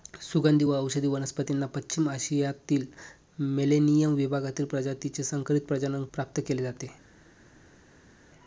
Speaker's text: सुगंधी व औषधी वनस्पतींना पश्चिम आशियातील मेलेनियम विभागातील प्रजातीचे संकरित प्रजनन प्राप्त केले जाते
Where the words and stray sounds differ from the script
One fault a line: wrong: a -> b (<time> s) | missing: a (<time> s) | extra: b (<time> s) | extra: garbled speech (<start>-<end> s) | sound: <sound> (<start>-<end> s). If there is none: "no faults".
no faults